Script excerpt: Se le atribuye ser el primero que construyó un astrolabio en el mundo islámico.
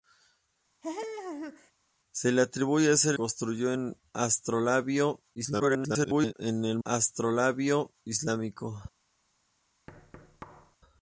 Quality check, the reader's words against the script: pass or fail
fail